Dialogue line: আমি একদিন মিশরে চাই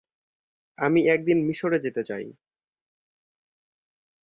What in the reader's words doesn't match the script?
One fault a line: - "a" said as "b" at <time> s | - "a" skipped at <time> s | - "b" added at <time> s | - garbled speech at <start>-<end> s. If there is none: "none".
- "যেতে" added at 1.8 s